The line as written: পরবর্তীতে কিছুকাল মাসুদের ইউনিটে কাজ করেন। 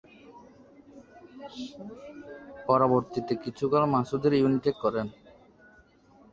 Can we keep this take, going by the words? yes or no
no